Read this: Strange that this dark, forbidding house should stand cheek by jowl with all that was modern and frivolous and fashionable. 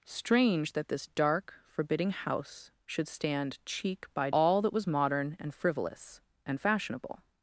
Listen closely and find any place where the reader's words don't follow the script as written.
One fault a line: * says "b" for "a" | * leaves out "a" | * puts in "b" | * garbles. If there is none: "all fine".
* leaves out "jowl with"